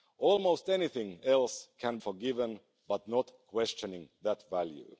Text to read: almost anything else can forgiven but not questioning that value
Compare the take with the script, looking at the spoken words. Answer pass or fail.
pass